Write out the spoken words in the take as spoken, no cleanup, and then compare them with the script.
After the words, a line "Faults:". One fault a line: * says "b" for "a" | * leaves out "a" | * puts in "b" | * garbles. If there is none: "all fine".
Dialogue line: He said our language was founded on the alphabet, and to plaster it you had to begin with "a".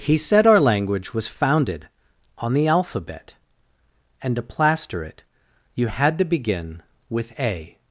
He said our language was founded on the alphabet, and to plaster it you had to begin with "a".
Faults:
all fine